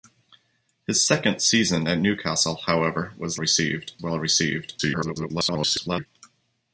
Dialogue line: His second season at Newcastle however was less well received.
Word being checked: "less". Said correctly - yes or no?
no